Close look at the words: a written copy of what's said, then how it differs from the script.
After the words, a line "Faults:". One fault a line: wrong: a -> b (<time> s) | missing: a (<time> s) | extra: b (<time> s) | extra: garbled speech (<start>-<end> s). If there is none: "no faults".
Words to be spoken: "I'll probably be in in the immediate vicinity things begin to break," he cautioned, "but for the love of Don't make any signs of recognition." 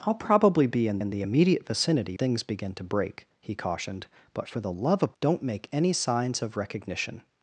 "I'll probably be in in the immediate vicinity things begin to break," he cautioned, "but for the love of Don't make any signs of recognition."
Faults:
no faults